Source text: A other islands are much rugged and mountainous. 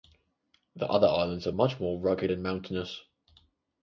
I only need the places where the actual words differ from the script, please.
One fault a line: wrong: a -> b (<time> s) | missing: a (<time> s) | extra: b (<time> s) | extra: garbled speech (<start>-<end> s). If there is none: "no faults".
wrong: A -> The (0.8 s)
extra: more (1.8 s)